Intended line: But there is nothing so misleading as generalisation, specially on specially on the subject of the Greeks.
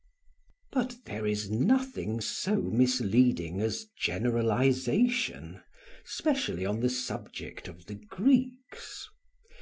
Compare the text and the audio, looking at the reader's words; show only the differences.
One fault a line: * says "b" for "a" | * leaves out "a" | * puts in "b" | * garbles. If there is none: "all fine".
* leaves out "specially on"